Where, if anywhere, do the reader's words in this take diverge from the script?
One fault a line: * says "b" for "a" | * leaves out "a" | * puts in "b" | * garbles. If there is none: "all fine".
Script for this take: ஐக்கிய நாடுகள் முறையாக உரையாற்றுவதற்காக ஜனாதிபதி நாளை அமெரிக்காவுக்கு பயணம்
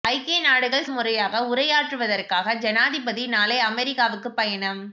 all fine